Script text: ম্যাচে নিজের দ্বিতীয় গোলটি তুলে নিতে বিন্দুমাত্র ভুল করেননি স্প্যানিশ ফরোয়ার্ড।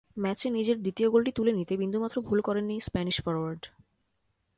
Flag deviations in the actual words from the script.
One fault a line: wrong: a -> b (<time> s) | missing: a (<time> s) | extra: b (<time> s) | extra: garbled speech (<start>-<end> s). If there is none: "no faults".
no faults